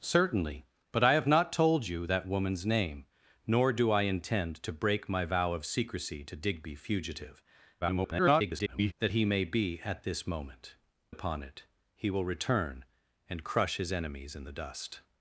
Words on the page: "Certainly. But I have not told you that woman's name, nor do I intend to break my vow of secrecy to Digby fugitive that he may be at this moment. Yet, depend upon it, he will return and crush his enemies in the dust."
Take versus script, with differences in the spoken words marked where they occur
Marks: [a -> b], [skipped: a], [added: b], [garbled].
"Certainly. But I have not told you that woman's name, nor do I intend to break my vow of secrecy to Digby fugitive [garbled] that he may be at this moment. [skipped: Yet, depend] upon it, he will return and crush his enemies in the dust."